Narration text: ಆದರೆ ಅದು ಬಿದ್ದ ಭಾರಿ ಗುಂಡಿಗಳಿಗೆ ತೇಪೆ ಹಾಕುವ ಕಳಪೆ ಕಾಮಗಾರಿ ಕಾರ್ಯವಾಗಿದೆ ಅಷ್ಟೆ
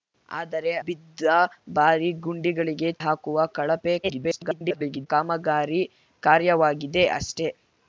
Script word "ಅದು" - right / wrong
wrong